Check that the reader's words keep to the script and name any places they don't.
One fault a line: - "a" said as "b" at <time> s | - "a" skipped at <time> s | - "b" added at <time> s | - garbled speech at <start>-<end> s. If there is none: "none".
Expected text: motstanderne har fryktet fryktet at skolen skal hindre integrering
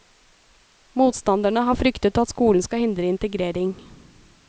- "fryktet" skipped at 2.2 s